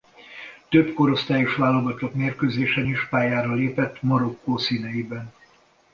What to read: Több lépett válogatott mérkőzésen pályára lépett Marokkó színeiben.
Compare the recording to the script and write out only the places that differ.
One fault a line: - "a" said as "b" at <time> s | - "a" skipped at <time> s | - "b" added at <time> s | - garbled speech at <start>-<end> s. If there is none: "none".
- "lépett" said as "korosztályos" at 0.9 s
- "is" added at 2.9 s